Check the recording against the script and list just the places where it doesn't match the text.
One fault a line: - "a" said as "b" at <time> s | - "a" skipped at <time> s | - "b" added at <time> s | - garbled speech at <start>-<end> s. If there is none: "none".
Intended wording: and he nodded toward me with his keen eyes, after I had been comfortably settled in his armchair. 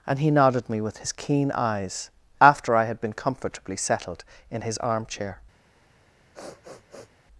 - "toward" skipped at 0.7 s